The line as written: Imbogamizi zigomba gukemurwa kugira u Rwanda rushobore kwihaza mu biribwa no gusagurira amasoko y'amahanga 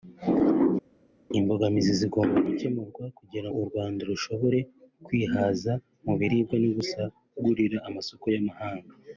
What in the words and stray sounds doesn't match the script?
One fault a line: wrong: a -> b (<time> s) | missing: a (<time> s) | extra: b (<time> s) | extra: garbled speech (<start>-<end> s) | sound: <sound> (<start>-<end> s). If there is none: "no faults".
no faults